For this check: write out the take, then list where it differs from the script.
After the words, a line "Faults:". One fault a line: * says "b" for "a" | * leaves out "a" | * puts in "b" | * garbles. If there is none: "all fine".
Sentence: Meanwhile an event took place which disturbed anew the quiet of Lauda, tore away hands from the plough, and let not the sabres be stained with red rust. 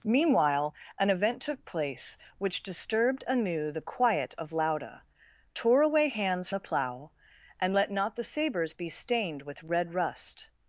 Meanwhile an event took place which disturbed anew the quiet of Lauda, tore away hands the plough, and let not the sabres be stained with red rust.
Faults:
* leaves out "from"